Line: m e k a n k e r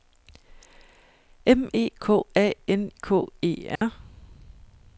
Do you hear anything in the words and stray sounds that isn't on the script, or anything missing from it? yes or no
yes